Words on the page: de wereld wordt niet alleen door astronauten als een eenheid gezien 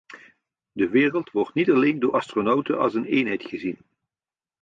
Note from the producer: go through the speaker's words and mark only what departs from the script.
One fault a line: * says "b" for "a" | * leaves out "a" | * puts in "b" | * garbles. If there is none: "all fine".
all fine